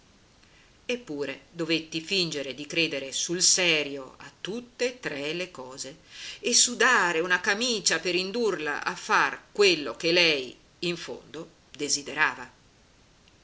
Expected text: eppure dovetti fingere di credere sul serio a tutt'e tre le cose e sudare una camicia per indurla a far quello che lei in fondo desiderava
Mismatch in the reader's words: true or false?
false